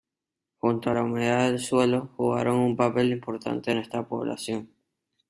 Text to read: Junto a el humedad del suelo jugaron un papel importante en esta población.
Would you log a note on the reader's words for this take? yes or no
yes